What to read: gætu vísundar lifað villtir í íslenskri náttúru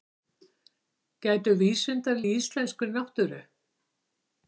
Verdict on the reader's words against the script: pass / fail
fail